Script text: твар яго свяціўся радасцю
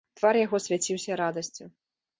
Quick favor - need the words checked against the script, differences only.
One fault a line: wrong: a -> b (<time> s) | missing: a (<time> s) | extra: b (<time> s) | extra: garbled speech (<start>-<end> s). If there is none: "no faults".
no faults